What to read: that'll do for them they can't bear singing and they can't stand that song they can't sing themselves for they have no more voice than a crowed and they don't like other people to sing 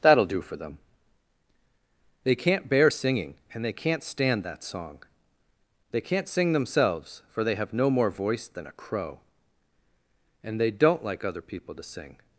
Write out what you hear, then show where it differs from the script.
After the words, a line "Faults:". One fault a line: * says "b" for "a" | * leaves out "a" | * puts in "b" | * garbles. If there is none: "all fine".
that'll do for them they can't bear singing and they can't stand that song they can't sing themselves for they have no more voice than a crow and they don't like other people to sing
Faults:
* says "crow" for "crowed"